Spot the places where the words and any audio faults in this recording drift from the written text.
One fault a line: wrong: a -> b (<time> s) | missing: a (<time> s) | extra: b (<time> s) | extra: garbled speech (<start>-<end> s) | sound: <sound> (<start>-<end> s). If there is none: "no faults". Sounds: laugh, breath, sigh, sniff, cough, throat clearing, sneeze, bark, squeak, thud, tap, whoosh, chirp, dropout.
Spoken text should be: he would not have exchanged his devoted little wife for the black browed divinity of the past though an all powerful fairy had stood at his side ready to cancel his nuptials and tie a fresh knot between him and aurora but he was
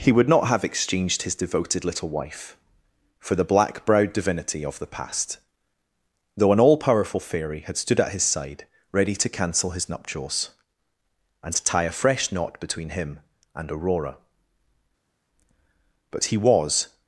no faults